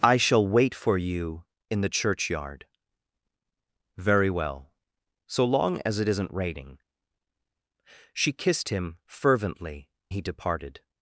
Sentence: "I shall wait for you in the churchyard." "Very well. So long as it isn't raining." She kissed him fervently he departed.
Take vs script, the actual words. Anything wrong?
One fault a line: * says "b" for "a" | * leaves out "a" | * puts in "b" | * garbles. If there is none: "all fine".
all fine